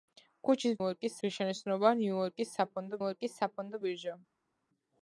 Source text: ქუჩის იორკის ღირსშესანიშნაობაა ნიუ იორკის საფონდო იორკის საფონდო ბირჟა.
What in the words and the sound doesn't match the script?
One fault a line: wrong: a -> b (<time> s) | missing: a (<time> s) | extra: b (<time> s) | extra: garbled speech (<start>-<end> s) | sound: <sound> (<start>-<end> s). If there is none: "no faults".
no faults